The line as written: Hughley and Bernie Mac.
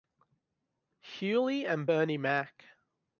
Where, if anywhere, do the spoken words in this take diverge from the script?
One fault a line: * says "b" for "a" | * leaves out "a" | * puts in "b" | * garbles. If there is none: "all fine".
all fine